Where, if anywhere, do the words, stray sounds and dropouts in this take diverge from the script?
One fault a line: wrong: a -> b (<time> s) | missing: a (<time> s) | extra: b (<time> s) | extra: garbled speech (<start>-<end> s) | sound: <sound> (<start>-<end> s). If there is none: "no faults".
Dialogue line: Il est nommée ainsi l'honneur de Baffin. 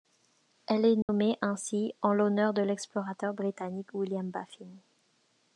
wrong: Il -> Elle (0.7 s)
sound: dropout (1.0-1.1 s)
extra: en (2.0 s)
extra: l'explorateur britannique William (2.6 s)